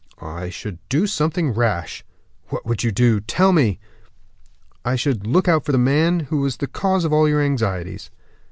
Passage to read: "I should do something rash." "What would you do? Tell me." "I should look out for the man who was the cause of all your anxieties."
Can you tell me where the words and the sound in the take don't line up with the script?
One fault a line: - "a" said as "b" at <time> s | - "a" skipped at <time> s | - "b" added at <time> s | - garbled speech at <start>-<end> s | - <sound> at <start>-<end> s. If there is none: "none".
none